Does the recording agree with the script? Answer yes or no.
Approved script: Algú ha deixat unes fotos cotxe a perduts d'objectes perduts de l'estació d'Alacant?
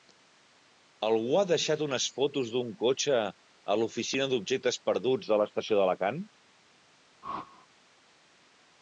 no